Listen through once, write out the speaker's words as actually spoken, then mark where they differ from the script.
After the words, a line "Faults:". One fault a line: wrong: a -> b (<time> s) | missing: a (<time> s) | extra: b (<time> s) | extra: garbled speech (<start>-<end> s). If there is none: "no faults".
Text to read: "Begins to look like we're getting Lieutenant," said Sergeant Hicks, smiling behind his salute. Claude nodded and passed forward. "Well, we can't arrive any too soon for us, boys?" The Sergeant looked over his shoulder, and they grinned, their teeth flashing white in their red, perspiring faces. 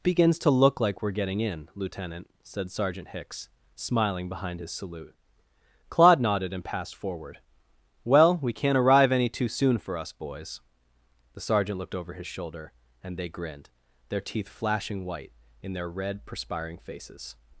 "Begins to look like we're getting in, Lieutenant," said Sergeant Hicks, smiling behind his salute. Claude nodded and passed forward. "Well, we can't arrive any too soon for us, boys?" The Sergeant looked over his shoulder, and they grinned, their teeth flashing white in their red, perspiring faces.
Faults:
extra: in (1.4 s)